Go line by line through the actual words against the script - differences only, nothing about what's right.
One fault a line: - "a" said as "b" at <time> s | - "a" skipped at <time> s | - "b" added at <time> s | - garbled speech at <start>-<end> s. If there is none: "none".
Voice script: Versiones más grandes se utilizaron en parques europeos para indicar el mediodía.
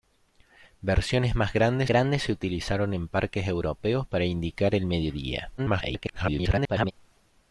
- "grandes" added at 1.9 s
- garbled speech at 5.6-6.9 s